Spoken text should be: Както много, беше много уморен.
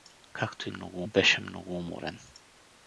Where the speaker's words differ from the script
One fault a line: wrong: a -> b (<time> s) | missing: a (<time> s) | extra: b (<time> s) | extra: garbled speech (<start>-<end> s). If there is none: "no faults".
no faults